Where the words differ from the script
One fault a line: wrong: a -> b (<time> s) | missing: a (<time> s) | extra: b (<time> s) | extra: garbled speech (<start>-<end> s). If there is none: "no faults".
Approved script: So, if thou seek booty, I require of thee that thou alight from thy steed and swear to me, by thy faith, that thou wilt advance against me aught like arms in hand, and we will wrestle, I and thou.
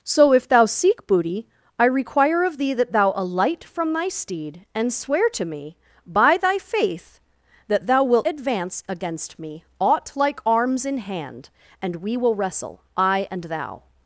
no faults